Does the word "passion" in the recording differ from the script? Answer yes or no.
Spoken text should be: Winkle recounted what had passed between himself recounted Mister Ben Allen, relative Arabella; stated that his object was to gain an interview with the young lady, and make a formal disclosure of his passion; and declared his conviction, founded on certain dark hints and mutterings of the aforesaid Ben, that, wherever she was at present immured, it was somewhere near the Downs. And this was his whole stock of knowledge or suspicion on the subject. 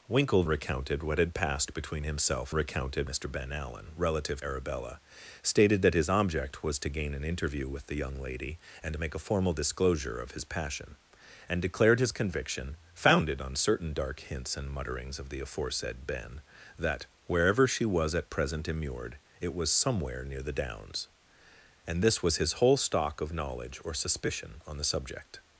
no